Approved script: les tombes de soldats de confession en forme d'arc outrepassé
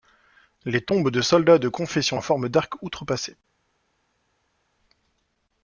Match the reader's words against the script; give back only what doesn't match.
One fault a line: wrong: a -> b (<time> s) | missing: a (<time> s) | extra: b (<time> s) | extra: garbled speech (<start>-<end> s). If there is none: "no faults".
no faults